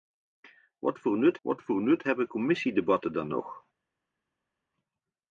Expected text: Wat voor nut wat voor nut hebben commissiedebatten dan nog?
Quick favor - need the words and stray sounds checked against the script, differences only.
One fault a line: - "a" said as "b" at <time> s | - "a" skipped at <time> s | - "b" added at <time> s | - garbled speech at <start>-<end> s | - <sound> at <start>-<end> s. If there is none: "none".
none